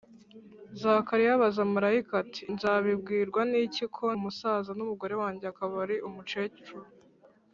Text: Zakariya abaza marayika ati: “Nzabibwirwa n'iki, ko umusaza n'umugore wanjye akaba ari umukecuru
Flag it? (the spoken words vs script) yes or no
no